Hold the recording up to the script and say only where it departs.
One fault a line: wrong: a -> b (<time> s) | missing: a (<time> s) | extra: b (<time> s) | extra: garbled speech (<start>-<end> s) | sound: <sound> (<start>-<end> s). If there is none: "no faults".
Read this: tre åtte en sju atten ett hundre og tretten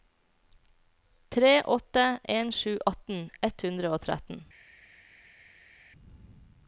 no faults